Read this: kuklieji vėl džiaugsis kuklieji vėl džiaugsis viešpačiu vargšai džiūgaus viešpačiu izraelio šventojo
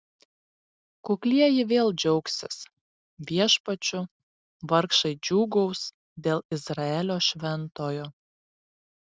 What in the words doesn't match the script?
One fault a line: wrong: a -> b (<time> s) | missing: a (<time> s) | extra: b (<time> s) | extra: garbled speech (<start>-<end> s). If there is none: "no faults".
missing: kuklieji vėl džiaugsis (2.6 s)
wrong: viešpačiu -> dėl (6.3 s)